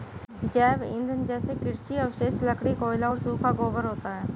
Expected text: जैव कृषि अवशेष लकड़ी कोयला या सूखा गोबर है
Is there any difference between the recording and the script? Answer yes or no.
yes